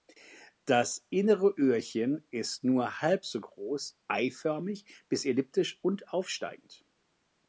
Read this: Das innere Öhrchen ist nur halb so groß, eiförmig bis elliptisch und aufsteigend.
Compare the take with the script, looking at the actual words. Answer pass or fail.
pass